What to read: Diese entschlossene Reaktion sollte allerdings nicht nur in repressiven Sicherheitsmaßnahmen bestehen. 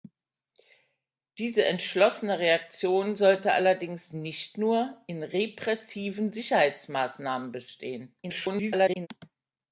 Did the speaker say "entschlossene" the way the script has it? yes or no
yes